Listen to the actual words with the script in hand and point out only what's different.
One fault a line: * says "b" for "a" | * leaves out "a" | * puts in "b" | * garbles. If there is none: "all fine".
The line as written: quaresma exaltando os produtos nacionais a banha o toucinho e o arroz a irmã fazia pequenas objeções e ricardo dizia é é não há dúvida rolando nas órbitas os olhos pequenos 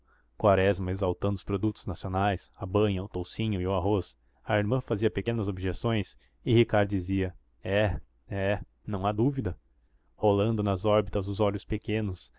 all fine